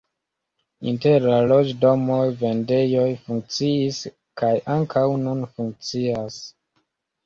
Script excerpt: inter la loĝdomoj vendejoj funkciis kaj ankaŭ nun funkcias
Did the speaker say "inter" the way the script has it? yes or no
yes